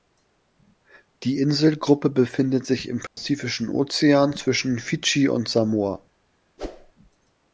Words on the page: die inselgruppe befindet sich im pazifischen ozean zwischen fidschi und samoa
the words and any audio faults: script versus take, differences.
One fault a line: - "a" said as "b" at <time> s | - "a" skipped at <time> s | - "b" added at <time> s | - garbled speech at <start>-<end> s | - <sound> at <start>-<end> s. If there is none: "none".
- dropout at 3.1-3.2 s
- whoosh at 6.6-6.9 s